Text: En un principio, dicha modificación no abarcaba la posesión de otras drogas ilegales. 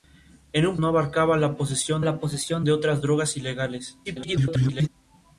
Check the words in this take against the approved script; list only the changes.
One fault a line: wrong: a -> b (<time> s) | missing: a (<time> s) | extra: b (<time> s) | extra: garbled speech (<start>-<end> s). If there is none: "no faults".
wrong: principio dicha modificación no abarcaba -> no abarcaba la posesión (0.8 s)
extra: garbled speech (4.0-4.9 s)